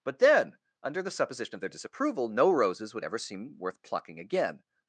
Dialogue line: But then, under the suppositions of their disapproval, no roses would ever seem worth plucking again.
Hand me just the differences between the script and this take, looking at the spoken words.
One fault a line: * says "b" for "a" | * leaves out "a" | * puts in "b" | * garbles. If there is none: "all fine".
* says "supposition" for "suppositions"